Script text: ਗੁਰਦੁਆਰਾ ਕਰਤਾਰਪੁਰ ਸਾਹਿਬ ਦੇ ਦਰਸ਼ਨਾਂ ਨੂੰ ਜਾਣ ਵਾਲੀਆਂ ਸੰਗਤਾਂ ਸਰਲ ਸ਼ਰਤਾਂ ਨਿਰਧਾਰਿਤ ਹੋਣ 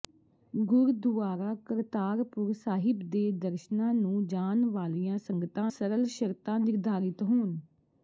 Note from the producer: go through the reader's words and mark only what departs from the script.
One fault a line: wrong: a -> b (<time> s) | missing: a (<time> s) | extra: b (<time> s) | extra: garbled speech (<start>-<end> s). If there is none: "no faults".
no faults